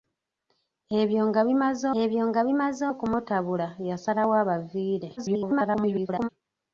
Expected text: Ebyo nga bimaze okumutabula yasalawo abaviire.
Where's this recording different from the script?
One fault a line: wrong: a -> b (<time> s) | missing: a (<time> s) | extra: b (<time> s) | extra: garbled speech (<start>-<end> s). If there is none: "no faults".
extra: ebyo nga bimaze (2.0 s)
extra: garbled speech (5.2-6.3 s)